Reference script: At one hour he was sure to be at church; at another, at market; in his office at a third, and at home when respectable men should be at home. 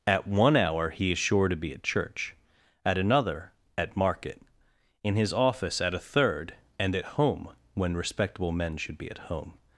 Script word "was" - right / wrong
wrong